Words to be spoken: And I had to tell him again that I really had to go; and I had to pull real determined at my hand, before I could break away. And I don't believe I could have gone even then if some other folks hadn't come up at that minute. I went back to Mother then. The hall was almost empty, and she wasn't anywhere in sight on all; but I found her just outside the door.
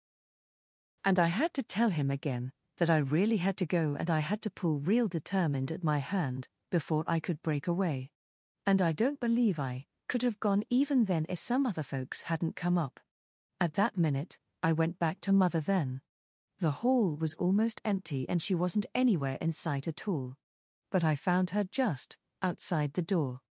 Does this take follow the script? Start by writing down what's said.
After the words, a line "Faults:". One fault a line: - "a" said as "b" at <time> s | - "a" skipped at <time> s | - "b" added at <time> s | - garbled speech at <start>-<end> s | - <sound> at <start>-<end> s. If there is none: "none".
And I had to tell him again that I really had to go; and I had to pull real determined at my hand, before I could break away. And I don't believe I could have gone even then if some other folks hadn't come up at that minute. I went back to Mother then. The hall was almost empty, and she wasn't anywhere in sight at all; but I found her just outside the door.
Faults:
- "on" said as "at" at 19.9 s